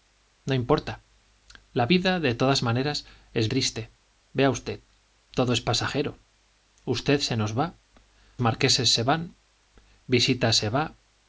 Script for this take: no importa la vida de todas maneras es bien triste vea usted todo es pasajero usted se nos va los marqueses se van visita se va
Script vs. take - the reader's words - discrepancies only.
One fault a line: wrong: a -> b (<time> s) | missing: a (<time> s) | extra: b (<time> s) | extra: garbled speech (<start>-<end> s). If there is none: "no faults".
missing: bien (3.5 s)
missing: los (7.8 s)